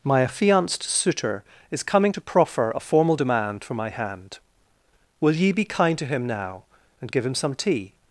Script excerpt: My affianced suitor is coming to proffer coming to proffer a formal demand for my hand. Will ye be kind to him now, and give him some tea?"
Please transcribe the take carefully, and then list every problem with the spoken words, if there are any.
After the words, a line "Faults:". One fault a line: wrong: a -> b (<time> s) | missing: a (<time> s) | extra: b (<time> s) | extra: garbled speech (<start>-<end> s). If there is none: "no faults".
My affianced suitor is coming to proffer a formal demand for my hand. Will ye be kind to him now, and give him some tea?"
Faults:
missing: coming to proffer (2.7 s)